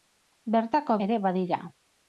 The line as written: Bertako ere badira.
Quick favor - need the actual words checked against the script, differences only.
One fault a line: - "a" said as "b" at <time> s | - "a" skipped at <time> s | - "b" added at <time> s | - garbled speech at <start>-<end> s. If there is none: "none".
none